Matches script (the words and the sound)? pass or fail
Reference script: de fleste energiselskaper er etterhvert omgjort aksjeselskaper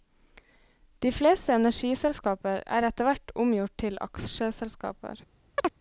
fail